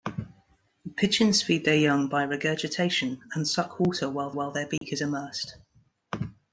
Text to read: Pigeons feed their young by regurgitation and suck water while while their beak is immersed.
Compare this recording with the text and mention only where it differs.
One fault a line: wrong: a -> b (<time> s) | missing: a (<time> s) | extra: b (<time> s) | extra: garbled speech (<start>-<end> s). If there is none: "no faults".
no faults